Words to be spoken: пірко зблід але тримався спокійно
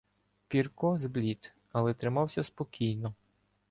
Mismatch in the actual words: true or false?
false